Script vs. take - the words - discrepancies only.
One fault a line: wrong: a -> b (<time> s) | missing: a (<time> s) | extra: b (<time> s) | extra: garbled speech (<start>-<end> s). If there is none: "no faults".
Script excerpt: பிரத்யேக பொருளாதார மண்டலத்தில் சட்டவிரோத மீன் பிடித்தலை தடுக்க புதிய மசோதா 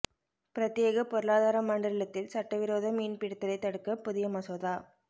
no faults